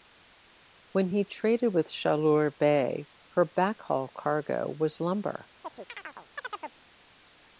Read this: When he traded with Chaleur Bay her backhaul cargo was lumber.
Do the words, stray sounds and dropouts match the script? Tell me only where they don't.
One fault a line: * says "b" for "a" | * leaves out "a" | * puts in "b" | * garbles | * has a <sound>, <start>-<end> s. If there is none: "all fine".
* has a chirp, 5.6-6.8 s